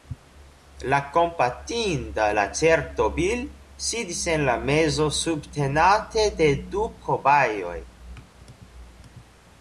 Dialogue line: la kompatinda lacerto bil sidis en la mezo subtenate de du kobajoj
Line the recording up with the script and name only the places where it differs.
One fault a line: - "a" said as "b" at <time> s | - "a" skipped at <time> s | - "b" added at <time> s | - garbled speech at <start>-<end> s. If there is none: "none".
none